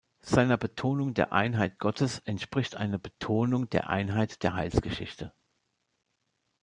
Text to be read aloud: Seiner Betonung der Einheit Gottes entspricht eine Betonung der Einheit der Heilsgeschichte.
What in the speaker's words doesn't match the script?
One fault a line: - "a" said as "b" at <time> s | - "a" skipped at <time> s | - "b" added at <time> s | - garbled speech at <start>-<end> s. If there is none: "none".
none